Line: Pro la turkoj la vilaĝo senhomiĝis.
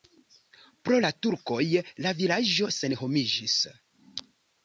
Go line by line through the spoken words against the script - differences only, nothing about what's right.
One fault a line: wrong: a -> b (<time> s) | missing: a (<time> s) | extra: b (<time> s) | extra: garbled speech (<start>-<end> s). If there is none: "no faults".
no faults